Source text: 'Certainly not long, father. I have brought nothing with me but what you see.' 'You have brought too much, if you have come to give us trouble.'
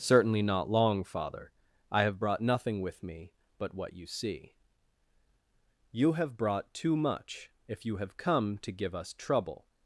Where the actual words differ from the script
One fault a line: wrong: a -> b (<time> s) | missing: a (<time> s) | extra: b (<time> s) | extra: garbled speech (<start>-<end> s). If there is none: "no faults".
no faults